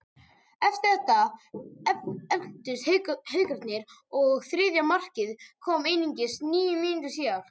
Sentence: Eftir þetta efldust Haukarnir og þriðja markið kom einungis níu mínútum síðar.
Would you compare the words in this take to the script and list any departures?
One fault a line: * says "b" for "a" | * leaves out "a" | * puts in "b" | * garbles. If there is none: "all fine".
all fine